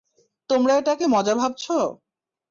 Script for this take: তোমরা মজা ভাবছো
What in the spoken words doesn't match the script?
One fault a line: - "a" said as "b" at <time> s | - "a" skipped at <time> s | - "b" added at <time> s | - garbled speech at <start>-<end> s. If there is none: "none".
- "এটাকে" added at 0.8 s